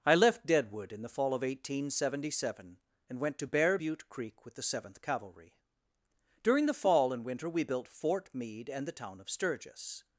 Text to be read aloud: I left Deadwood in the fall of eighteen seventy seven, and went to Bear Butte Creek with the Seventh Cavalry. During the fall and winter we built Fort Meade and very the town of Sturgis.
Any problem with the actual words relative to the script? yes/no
yes